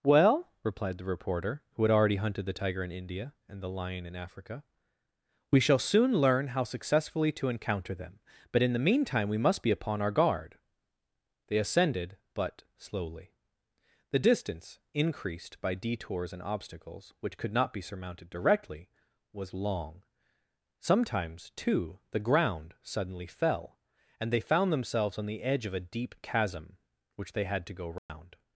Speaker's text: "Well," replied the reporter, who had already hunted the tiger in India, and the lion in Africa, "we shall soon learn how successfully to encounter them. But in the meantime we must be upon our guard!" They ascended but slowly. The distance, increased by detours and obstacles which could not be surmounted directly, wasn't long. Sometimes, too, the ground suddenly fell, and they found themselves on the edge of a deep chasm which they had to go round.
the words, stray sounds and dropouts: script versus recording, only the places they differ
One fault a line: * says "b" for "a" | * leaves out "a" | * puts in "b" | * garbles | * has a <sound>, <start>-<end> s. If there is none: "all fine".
* says "was" for "wasn't"
* has a dropout, 28.0-28.1 s